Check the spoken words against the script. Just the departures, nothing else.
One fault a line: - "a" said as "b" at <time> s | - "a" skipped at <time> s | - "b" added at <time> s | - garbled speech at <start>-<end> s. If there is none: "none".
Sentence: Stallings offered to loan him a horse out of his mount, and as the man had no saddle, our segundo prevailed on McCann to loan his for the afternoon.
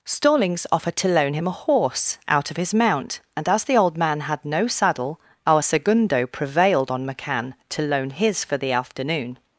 - "old" added at 3.8 s